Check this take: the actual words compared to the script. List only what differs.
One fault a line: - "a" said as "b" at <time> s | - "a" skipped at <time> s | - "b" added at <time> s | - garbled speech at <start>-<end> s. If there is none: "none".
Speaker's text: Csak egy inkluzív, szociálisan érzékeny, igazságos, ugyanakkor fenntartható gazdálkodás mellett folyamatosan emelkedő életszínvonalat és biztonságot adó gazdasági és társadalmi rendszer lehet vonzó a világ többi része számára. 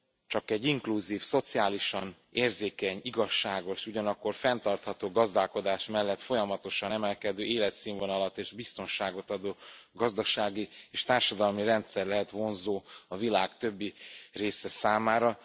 none